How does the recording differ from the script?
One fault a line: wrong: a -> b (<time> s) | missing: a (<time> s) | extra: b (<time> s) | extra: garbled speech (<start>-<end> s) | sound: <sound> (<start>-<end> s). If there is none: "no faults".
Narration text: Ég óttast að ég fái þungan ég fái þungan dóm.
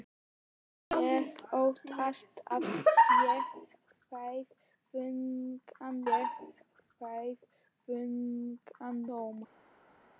no faults